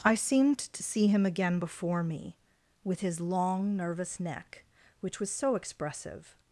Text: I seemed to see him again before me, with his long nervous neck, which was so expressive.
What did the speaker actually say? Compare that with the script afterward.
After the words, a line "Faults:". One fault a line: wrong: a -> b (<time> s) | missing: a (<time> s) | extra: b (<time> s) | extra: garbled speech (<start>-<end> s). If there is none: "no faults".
I seemed to see him again before me, with his long nervous neck, which was so expressive.
Faults:
no faults